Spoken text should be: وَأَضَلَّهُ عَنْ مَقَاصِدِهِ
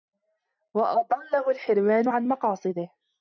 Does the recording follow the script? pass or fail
fail